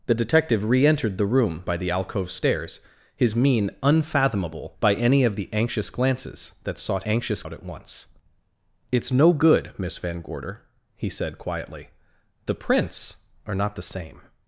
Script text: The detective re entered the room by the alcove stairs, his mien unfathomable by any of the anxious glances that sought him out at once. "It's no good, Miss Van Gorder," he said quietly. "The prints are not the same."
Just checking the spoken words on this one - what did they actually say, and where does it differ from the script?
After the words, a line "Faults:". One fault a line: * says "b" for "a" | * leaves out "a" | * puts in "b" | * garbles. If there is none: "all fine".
The detective re entered the room by the alcove stairs, his mien unfathomable by any of the anxious glances that sought anxious out at once. "It's no good, Miss Van Gorder," he said quietly. "The prints are not the same."
Faults:
* says "anxious" for "him"